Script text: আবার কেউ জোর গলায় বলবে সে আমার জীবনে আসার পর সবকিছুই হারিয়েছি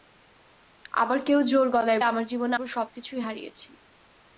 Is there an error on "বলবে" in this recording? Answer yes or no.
yes